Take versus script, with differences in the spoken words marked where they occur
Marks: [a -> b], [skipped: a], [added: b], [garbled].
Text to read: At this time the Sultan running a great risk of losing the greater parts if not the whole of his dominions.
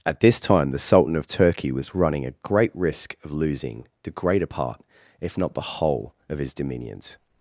At this time the Sultan [added: of Turkey was] running a great risk of losing the greater [parts -> part] if not the whole of his dominions.